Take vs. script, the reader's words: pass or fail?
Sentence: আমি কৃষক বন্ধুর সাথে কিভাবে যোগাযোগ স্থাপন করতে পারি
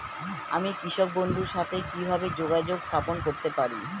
pass